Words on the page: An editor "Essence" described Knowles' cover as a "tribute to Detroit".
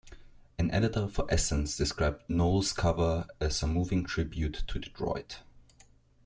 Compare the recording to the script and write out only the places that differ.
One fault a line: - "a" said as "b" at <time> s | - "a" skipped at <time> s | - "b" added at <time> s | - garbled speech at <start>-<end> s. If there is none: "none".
- "for" added at 1.1 s
- "moving" added at 3.7 s